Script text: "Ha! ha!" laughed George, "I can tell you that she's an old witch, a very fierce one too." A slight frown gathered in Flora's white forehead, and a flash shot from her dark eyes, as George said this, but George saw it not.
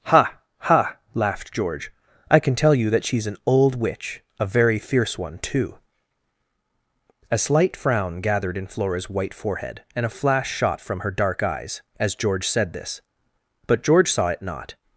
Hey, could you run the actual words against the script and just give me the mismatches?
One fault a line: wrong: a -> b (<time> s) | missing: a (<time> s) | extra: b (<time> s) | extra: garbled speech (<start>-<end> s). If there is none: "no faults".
no faults